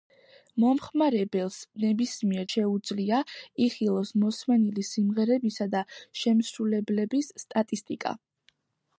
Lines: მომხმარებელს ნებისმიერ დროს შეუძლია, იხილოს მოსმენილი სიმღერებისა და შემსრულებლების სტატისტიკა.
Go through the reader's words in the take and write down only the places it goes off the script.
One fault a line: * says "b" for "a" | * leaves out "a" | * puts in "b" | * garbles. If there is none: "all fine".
* leaves out "დროს"